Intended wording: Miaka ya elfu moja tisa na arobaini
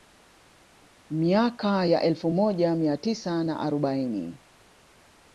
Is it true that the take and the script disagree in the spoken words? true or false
true